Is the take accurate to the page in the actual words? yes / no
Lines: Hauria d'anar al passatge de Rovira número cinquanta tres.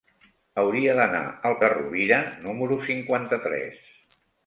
no